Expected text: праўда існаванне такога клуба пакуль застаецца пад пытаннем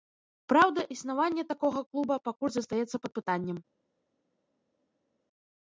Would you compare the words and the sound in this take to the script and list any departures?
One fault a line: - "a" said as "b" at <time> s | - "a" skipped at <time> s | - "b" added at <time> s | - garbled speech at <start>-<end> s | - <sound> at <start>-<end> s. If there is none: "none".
none